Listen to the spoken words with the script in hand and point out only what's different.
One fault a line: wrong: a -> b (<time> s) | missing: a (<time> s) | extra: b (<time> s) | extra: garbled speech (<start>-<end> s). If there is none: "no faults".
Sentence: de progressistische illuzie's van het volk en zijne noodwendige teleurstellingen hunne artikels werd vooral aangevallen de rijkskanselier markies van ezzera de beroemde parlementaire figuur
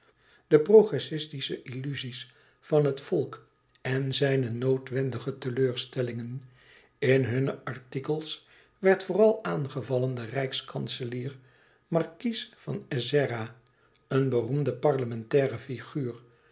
extra: in (7.0 s)
wrong: de -> een (14.1 s)